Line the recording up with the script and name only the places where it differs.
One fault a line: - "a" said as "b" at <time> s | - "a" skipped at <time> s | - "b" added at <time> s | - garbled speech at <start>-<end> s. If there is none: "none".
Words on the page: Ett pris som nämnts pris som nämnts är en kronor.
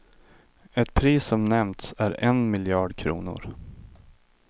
- "pris som nämnts" skipped at 1.9 s
- "miljard" added at 2.5 s